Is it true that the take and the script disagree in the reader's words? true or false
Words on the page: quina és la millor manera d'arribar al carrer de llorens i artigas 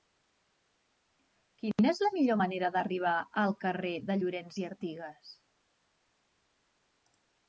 false